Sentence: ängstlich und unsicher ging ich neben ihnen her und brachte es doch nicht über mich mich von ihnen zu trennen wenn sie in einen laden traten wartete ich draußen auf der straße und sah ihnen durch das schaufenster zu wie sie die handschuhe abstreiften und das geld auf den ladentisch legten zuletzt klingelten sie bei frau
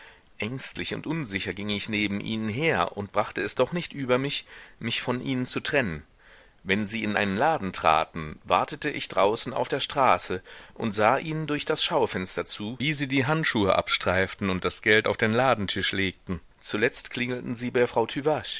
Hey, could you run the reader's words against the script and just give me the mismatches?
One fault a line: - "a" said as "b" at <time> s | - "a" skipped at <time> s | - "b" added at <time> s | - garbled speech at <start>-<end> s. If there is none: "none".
none